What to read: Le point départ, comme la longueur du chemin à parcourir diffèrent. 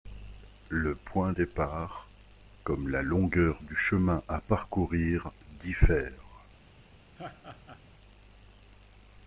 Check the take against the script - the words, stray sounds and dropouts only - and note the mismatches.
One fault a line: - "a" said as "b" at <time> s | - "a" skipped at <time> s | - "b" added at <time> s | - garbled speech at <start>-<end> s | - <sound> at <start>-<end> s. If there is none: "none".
- laugh at 7.2-7.8 s